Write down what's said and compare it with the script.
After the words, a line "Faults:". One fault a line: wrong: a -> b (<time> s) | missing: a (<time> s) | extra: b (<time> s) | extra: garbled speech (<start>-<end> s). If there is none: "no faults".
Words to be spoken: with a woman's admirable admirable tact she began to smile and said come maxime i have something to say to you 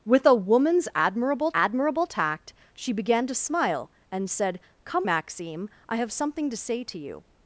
with a woman's admirable admirable tact she began to smile and said come maxime i have something to say to you
Faults:
no faults